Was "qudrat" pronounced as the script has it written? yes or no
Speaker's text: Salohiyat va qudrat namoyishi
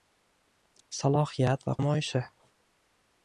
no